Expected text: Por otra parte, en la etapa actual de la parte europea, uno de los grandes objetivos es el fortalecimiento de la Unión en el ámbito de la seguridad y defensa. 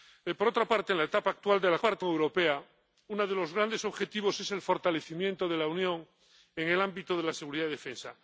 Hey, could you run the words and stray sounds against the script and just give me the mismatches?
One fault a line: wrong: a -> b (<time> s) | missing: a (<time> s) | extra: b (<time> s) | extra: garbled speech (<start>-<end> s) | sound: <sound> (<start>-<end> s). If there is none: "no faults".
no faults